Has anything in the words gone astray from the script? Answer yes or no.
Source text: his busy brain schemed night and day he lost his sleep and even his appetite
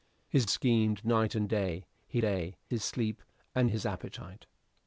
yes